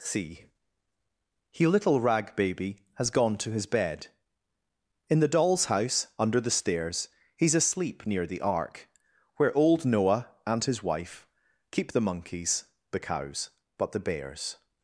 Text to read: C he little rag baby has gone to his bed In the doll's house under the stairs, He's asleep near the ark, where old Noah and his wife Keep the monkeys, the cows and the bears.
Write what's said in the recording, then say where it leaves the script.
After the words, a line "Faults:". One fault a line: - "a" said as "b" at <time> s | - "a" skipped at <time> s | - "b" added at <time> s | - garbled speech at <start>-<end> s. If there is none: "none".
C he little rag baby has gone to his bed In the doll's house under the stairs, He's asleep near the ark, where old Noah and his wife Keep the monkeys, the cows but the bears.
Faults:
- "and" said as "but" at 13.8 s